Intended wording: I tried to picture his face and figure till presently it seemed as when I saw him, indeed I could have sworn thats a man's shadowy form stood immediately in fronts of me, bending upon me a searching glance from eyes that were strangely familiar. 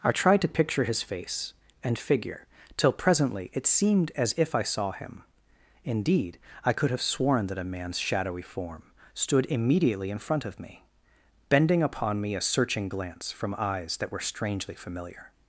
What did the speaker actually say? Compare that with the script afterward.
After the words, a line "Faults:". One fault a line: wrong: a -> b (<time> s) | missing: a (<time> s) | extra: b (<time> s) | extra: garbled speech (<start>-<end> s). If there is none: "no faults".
I tried to picture his face and figure till presently it seemed as if I saw him, indeed I could have sworn that a man's shadowy form stood immediately in front of me, bending upon me a searching glance from eyes that were strangely familiar.
Faults:
wrong: when -> if (4.3 s)
wrong: thats -> that (7.5 s)
wrong: fronts -> front (10.2 s)